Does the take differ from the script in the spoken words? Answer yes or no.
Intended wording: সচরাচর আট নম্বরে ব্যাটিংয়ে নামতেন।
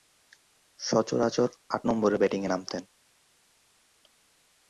no